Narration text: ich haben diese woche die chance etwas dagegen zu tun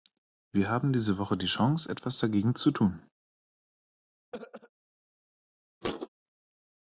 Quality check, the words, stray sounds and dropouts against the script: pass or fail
fail